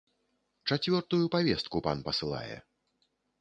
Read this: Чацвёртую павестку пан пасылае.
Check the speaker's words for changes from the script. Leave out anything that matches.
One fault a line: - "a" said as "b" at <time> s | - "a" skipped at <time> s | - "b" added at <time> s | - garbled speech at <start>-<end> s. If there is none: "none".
none